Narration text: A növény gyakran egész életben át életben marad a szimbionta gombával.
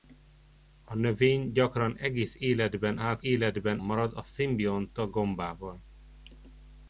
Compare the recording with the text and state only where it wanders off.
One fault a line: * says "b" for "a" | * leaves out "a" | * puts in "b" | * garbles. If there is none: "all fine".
all fine